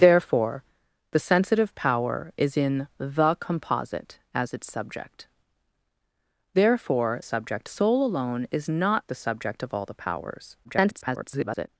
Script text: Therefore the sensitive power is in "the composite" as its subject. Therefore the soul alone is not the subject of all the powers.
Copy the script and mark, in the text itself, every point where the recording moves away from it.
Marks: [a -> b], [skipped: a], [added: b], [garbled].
Therefore the sensitive power is in "the composite" as its subject. Therefore [the -> subject] soul alone is not the subject of all the powers. [garbled]